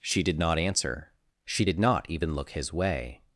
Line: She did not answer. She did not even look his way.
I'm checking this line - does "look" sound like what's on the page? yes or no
yes